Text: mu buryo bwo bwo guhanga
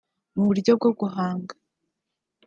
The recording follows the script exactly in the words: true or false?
false